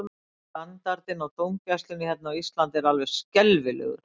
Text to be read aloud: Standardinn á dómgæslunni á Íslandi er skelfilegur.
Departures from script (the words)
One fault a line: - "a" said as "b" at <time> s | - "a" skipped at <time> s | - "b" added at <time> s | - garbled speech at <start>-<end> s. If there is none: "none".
- "hérna" added at 2.1 s
- "alveg" added at 2.9 s